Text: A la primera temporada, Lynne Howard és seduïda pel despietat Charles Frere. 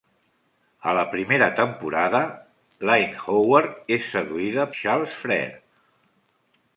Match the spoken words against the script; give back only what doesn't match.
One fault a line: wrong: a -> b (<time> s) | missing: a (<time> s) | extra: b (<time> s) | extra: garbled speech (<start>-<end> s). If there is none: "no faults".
missing: pel despietat (4.7 s)